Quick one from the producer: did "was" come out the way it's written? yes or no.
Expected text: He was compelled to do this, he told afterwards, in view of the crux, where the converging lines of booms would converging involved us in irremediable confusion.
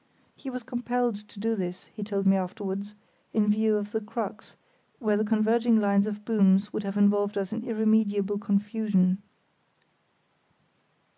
yes